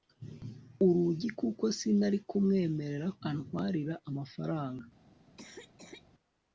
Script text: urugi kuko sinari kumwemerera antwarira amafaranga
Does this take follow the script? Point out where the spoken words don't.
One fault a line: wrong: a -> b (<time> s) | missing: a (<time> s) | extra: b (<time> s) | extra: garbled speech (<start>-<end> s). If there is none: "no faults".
no faults